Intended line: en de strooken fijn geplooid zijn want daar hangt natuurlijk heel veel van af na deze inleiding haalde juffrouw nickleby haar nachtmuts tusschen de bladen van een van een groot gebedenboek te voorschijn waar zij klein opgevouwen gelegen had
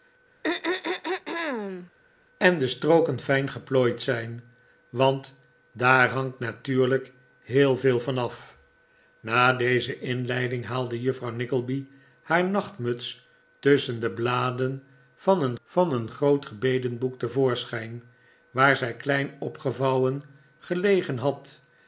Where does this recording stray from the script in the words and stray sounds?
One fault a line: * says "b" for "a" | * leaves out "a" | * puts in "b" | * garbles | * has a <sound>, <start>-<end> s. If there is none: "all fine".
* has a throat clearing, 0.4-1.9 s